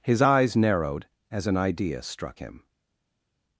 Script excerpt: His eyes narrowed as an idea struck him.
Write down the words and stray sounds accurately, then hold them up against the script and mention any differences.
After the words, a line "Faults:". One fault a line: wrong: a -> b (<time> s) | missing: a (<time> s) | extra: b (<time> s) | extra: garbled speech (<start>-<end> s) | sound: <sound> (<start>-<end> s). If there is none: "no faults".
His eyes narrowed as an idea struck him.
Faults:
no faults